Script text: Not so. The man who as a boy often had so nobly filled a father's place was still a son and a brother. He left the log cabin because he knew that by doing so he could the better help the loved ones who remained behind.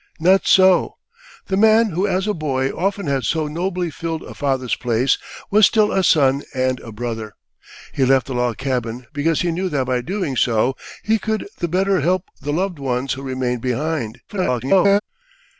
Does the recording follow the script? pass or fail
fail